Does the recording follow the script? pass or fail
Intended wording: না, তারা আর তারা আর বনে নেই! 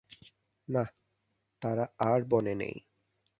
fail